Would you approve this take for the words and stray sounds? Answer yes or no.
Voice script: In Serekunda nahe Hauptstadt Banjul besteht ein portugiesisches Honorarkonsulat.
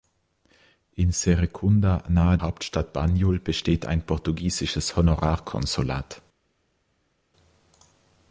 yes